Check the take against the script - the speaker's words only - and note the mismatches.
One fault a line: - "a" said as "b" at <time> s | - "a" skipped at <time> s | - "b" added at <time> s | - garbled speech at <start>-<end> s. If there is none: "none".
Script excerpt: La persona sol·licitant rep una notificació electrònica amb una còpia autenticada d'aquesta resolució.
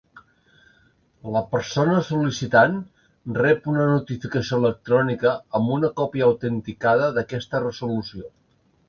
none